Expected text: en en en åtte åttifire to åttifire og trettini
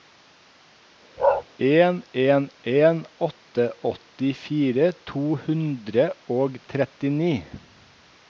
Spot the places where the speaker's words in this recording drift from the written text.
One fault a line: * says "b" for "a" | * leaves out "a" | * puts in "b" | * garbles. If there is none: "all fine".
* says "hundre" for "åttifire"